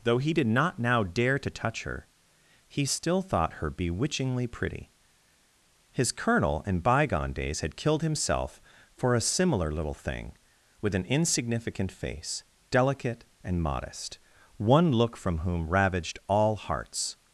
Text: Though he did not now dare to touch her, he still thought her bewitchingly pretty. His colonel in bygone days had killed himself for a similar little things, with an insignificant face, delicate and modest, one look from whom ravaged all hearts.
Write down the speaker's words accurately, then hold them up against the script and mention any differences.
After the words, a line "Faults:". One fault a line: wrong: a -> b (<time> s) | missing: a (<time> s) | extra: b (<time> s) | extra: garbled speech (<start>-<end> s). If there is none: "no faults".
Though he did not now dare to touch her, he still thought her bewitchingly pretty. His colonel in bygone days had killed himself for a similar little thing, with an insignificant face, delicate and modest, one look from whom ravaged all hearts.
Faults:
wrong: things -> thing (9.9 s)